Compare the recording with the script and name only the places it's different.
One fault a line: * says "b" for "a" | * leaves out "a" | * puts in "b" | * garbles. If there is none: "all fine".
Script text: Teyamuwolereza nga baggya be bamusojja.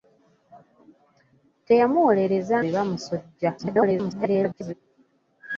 * leaves out "nga baggya"
* garbles